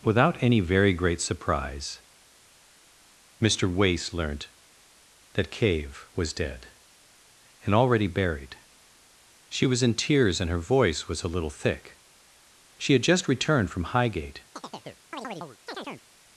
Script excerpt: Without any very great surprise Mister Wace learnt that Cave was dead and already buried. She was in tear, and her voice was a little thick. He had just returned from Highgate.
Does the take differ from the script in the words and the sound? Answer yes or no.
yes